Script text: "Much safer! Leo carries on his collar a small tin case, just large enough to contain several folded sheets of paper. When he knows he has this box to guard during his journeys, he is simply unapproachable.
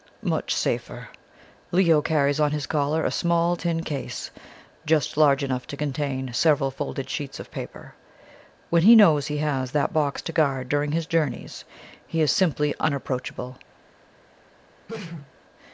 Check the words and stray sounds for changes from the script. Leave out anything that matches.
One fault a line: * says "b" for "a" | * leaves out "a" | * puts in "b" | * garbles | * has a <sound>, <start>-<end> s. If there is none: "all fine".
* says "that" for "this"
* has a sneeze, 14.9-15.3 s